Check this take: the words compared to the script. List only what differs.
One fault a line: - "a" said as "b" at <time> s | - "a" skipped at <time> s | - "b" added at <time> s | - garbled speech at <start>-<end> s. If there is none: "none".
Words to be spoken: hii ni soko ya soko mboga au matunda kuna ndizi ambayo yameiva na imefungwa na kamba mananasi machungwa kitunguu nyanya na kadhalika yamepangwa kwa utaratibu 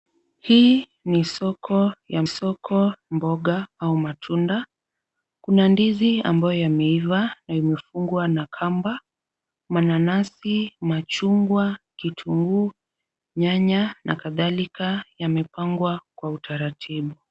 none